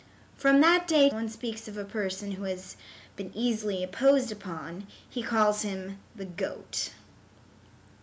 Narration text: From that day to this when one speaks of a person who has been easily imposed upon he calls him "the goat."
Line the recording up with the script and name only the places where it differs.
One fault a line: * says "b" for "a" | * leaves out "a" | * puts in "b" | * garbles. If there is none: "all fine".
* leaves out "to this when"